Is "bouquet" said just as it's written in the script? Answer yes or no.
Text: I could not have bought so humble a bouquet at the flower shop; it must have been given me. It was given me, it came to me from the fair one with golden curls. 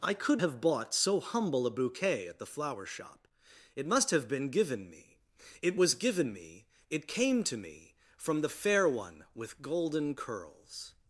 yes